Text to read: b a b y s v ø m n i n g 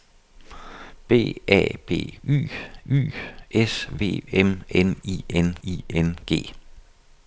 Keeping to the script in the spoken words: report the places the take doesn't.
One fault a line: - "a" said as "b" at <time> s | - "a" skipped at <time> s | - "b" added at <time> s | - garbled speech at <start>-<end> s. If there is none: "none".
- "y" added at 2.9 s
- "ø m" said as "m n i" at 4.3 s